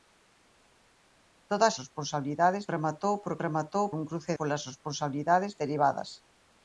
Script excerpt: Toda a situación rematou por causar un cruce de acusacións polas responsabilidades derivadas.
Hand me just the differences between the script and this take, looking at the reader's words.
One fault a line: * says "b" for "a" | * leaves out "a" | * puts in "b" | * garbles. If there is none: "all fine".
* says "responsabilidades" for "situación"
* says "rematou" for "causar"
* leaves out "de acusacións"